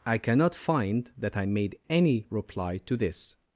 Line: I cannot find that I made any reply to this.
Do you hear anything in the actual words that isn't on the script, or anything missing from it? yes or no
no